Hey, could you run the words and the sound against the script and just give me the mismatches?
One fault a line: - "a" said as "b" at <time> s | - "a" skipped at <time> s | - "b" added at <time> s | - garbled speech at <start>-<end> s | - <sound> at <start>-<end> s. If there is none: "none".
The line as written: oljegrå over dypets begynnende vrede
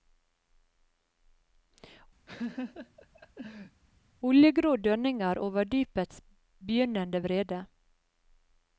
- laugh at 2.3-3.8 s
- "dønninger" added at 4.9 s